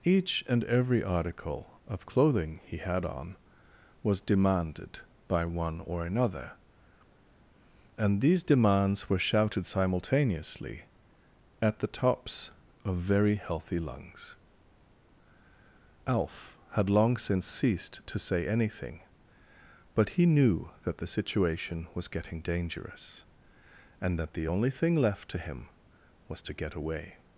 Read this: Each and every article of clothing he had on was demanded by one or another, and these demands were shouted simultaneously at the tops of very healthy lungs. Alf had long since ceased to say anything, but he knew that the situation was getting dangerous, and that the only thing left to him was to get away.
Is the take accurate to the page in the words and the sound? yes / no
yes